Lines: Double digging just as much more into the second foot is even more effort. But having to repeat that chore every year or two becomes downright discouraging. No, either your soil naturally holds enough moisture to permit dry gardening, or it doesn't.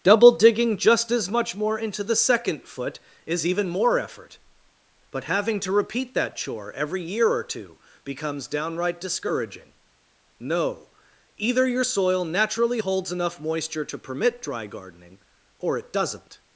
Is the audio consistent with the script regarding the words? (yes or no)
yes